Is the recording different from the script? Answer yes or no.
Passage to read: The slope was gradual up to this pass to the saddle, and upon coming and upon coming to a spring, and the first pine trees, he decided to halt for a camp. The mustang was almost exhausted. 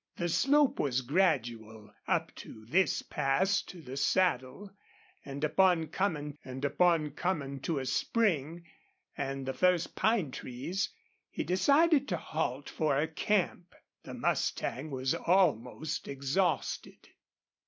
no